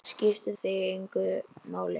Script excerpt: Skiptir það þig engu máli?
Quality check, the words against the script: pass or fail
fail